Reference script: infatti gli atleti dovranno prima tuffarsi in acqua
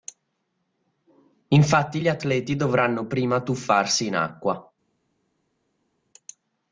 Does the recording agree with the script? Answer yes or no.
yes